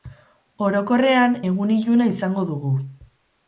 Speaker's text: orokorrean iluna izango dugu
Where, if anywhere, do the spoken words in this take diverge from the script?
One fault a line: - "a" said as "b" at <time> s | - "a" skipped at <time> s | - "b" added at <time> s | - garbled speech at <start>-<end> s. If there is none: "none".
- "egun" added at 1.5 s